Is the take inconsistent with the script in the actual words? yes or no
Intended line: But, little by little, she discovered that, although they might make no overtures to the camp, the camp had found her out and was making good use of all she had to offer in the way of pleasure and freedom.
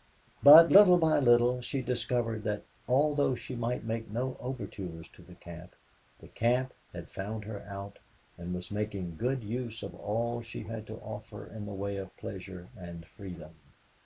yes